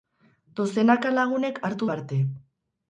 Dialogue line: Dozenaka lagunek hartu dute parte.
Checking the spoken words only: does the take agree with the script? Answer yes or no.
no